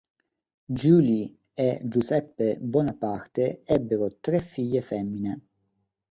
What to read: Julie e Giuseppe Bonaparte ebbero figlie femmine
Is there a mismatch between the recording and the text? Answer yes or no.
yes